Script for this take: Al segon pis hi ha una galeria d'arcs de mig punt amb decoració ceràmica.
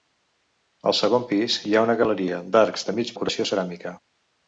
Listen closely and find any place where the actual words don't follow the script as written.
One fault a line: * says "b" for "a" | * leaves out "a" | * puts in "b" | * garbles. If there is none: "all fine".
* leaves out "punt amb"